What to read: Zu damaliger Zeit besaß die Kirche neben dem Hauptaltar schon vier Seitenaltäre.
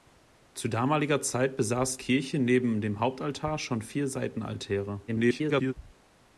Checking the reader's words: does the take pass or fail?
fail